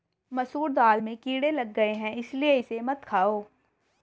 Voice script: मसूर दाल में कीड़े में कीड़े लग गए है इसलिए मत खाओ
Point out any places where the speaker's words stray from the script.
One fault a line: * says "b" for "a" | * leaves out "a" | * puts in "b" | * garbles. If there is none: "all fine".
* leaves out "में कीड़े"
* puts in "इसे"